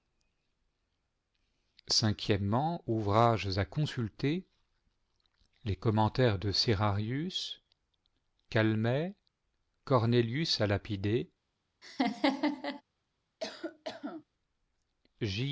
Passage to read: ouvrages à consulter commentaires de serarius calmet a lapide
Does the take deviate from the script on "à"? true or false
false